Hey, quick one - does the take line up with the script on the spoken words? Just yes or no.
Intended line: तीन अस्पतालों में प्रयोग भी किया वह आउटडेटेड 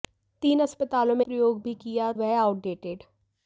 yes